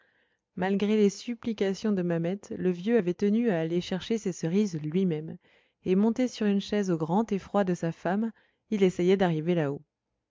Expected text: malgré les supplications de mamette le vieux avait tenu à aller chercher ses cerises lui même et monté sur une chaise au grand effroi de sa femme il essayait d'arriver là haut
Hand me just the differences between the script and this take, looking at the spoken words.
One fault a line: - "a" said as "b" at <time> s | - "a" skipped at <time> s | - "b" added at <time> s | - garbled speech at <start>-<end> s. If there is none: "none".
none